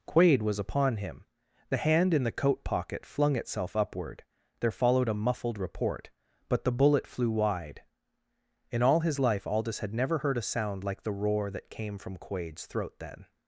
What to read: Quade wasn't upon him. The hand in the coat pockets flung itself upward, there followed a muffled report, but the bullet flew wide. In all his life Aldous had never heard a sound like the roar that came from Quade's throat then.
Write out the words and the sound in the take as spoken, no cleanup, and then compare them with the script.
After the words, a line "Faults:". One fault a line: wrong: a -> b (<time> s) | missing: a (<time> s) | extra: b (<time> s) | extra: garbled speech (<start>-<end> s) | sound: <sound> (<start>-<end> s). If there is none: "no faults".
Quade was upon him. The hand in the coat pocket flung itself upward, there followed a muffled report, but the bullet flew wide. In all his life Aldous had never heard a sound like the roar that came from Quade's throat then.
Faults:
wrong: wasn't -> was (0.4 s)
wrong: pockets -> pocket (2.6 s)